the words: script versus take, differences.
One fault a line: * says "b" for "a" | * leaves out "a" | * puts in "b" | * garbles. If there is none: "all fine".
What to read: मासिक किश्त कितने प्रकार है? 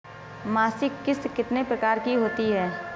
* puts in "की होती"